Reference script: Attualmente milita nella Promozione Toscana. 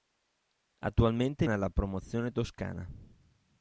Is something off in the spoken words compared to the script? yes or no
yes